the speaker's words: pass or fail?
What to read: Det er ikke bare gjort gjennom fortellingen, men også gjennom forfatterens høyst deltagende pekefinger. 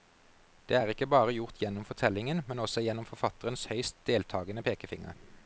pass